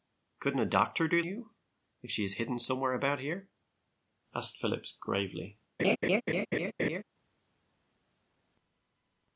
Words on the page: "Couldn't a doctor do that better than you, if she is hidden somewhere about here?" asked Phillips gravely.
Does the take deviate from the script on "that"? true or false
true